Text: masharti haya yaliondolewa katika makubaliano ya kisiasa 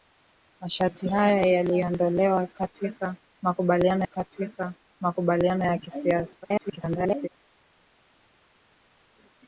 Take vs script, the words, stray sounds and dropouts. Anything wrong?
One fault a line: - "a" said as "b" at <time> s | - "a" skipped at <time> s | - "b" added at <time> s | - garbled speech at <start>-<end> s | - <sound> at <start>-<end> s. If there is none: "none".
- "katika makubaliano" added at 4.0 s
- garbled speech at 6.4-7.3 s